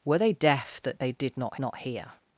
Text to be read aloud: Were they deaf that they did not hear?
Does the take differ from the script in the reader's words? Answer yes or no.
yes